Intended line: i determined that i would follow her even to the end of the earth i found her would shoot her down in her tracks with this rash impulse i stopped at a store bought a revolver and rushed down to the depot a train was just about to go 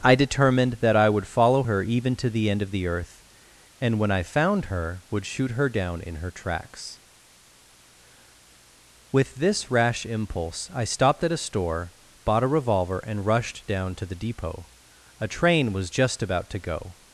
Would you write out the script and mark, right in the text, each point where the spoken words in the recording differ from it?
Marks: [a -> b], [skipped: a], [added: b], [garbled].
i determined that i would follow her even to the end of the earth [added: and when] i found her would shoot her down in her tracks with this rash impulse i stopped at a store bought a revolver and rushed down to the depot a train was just about to go